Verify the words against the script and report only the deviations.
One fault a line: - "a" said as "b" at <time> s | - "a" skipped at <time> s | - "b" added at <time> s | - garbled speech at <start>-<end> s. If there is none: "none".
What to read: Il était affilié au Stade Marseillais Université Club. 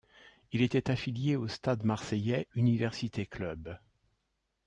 none